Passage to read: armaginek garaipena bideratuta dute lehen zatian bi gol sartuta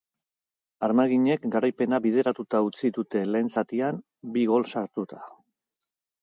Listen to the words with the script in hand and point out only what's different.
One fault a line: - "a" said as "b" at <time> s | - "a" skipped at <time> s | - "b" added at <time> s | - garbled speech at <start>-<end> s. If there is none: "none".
- "utzi" added at 2.7 s